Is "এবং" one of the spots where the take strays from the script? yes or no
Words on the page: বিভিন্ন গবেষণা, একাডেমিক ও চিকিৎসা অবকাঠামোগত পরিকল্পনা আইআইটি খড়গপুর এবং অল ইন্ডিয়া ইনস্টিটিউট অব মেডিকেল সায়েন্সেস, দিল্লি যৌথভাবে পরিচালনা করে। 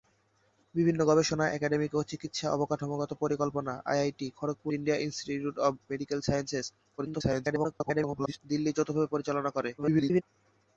yes